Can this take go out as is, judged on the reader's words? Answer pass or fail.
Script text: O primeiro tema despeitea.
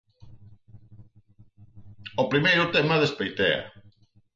pass